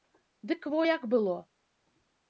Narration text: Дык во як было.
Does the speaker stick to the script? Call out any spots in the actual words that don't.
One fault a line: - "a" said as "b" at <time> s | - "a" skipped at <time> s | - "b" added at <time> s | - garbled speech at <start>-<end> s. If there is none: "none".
none